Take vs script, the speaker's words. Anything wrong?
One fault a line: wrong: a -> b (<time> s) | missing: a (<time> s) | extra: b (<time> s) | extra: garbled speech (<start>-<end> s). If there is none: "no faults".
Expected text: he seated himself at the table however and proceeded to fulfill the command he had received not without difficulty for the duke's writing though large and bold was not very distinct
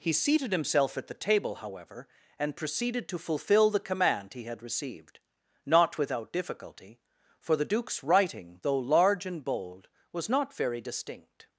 no faults